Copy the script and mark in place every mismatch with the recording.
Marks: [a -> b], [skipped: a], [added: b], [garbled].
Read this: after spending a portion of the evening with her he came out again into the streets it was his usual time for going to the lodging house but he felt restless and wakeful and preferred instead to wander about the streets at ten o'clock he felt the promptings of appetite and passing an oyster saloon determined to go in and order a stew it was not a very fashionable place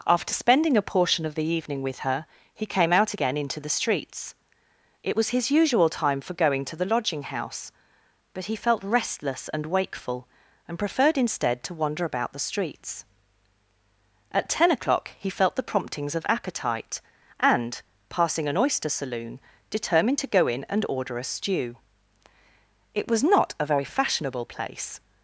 after spending a portion of the evening with her he came out again into the streets it was his usual time for going to the lodging house but he felt restless and wakeful and preferred instead to wander about the streets at ten o'clock he felt the promptings of appetite and passing an oyster saloon determined to go in and order a stew it was not a very fashionable place